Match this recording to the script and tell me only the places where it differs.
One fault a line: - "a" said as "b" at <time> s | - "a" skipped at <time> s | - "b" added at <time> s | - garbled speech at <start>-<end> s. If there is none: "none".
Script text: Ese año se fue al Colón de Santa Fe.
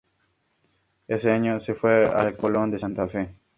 none